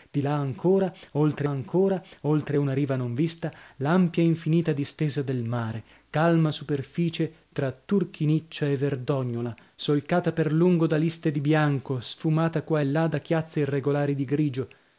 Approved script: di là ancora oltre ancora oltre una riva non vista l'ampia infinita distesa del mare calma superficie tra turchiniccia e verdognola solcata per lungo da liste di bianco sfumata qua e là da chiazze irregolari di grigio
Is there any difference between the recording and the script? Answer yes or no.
no